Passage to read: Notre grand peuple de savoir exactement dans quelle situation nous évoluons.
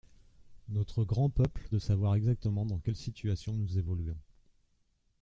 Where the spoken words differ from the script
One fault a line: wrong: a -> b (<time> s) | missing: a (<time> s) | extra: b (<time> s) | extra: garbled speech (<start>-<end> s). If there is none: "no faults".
no faults